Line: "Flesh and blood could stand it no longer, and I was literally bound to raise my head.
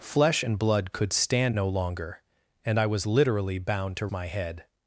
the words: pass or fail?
fail